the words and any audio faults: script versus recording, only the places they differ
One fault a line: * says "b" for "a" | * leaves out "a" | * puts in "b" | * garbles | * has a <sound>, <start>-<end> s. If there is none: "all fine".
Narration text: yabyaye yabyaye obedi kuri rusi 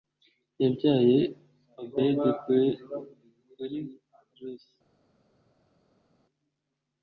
* leaves out "yabyaye"